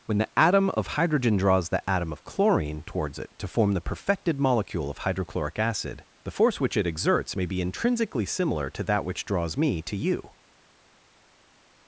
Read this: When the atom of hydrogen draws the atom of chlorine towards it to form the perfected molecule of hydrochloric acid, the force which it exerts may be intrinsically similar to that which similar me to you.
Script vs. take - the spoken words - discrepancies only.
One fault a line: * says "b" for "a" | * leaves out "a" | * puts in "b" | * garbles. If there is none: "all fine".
* says "draws" for "similar"